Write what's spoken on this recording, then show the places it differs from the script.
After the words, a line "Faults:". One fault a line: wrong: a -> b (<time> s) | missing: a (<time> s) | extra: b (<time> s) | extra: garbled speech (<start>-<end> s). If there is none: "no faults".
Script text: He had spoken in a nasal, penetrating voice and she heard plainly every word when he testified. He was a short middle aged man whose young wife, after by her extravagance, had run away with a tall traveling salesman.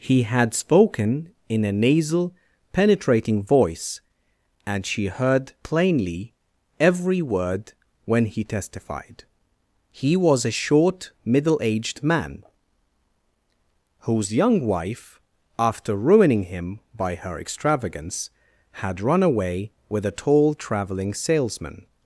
He had spoken in a nasal, penetrating voice and she heard plainly every word when he testified. He was a short middle aged man whose young wife, after ruining him by her extravagance, had run away with a tall traveling salesman.
Faults:
extra: ruining him (15.9 s)